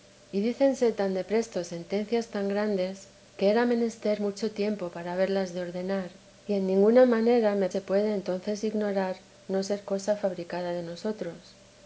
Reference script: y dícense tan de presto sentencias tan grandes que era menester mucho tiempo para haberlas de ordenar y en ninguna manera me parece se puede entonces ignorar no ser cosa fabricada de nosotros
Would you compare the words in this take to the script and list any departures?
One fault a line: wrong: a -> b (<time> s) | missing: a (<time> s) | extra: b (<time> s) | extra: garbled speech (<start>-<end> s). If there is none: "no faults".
missing: parece (7.7 s)